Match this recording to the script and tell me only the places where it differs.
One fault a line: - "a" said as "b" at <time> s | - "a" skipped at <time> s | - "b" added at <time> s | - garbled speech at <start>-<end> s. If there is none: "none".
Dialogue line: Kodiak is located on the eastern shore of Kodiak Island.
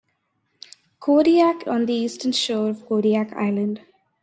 - "is located" skipped at 1.7 s